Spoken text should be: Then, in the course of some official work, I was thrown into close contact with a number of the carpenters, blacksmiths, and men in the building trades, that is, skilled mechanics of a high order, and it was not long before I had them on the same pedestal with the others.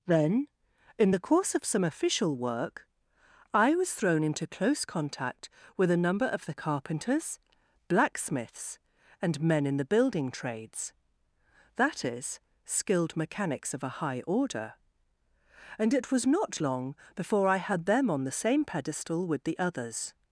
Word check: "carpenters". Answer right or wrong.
right